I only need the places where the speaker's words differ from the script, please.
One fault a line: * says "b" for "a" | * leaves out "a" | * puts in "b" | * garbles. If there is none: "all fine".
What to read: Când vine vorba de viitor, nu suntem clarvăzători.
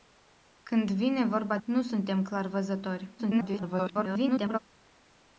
* leaves out "de viitor"
* garbles